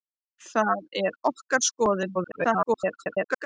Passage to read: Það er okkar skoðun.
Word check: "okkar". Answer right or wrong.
right